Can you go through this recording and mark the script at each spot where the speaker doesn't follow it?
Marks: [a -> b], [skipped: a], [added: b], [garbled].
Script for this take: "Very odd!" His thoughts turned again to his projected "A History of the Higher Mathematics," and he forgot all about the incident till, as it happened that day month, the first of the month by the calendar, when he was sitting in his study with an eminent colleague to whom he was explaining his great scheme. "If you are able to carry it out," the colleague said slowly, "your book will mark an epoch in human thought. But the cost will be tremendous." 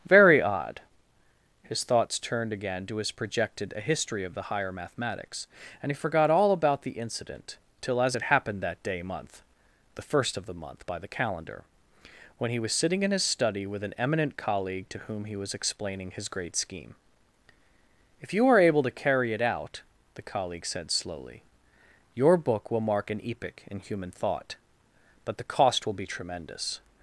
"Very odd!" His thoughts turned again to his projected "A History of the Higher Mathematics," and he forgot all about the incident till, as it happened that day month, the first of the month by the calendar, when he was sitting in his study with an eminent colleague to whom he was explaining his great scheme. "If you are able to carry it out," the colleague said slowly, "your book will mark an epoch in human thought. But the cost will be tremendous."